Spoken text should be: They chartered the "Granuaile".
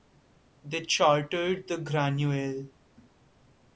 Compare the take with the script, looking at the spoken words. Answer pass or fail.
pass